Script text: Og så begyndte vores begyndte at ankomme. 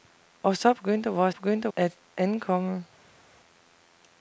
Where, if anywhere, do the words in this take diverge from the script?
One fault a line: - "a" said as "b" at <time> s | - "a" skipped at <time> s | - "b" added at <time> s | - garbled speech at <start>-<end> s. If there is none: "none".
none